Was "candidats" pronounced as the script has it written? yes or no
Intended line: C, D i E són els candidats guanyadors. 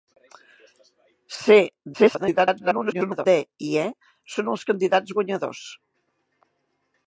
yes